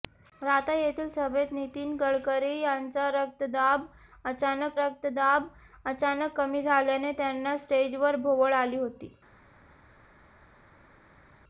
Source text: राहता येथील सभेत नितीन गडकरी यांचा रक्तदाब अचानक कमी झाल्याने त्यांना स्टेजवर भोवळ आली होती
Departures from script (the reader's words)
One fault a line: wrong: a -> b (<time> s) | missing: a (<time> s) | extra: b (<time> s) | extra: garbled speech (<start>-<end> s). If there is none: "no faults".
extra: रक्तदाब अचानक (4.8 s)